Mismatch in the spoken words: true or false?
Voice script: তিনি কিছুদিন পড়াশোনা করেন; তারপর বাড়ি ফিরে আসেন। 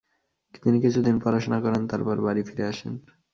false